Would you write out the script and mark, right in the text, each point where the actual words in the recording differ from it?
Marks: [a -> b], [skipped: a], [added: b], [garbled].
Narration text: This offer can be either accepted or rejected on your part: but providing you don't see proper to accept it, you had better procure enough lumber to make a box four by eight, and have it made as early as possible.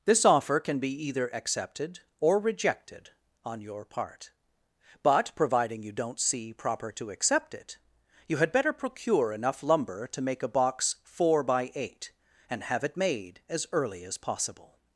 This offer can be either accepted or rejected on your part: but providing you don't see proper to accept it, you had better procure enough lumber to make a box four by eight, and have it made as early as possible.